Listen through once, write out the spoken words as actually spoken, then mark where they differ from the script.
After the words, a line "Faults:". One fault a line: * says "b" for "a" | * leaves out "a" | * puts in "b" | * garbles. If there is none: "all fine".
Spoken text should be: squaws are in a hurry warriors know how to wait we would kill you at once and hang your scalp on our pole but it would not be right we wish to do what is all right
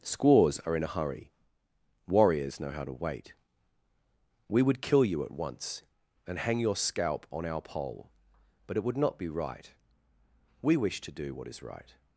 squaws are in a hurry warriors know how to wait we would kill you at once and hang your scalp on our pole but it would not be right we wish to do what is right
Faults:
* leaves out "all"